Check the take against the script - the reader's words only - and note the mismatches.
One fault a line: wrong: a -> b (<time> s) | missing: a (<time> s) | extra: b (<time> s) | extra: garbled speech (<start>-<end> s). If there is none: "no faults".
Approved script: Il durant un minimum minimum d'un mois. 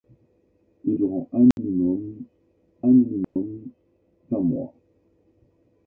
no faults